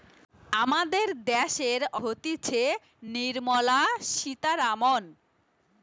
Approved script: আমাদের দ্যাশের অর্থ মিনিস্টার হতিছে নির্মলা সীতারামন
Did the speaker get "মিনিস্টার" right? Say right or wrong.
wrong